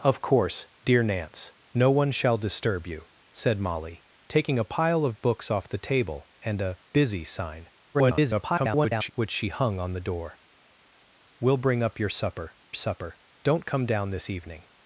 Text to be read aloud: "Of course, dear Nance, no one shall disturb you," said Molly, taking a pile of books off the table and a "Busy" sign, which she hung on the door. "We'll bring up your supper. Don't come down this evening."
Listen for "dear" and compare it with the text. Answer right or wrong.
right